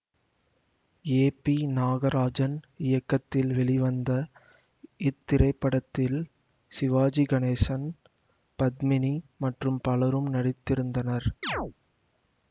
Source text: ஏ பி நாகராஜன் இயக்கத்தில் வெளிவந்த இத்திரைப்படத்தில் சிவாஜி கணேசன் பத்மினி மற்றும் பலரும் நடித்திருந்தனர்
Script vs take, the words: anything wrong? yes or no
no